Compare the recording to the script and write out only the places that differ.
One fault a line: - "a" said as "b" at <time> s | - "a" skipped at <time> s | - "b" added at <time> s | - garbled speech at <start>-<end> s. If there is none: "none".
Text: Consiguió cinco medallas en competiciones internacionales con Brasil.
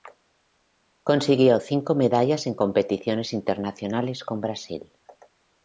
none